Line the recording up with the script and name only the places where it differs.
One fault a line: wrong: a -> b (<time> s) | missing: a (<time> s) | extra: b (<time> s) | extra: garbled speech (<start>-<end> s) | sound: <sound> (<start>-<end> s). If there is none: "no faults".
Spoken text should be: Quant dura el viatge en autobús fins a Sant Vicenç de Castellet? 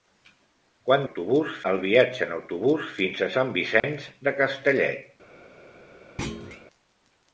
wrong: dura -> autobús (1.0 s)
sound: dropout (3.8-3.8 s)
sound: thud (6.2-6.7 s)